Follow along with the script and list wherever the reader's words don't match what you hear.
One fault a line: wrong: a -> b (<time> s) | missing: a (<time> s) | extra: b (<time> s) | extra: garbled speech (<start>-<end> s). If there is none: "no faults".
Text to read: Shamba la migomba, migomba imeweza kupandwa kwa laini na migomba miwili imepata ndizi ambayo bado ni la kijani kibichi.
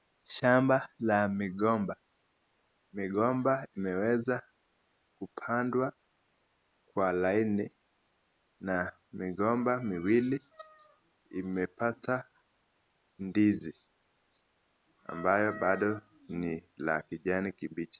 no faults